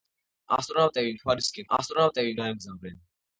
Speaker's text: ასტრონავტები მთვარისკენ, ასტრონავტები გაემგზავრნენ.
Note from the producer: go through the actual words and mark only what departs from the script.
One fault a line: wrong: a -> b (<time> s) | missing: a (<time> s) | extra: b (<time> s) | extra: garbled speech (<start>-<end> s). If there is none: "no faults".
no faults